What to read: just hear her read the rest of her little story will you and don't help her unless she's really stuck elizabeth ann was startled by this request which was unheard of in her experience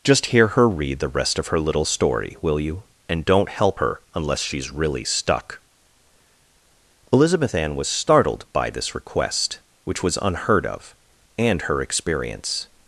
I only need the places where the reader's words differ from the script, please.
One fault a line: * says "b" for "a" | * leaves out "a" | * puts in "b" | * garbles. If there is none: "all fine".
* says "and" for "in"